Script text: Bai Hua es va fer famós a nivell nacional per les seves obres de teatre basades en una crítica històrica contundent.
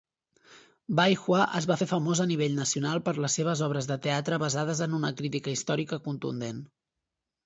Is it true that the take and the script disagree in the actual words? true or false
false